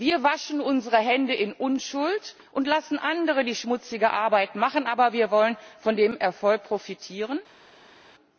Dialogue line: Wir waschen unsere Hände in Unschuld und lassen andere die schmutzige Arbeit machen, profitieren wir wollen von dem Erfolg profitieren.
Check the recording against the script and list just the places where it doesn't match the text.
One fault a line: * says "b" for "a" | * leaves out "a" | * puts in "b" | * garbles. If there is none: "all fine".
* says "aber" for "profitieren"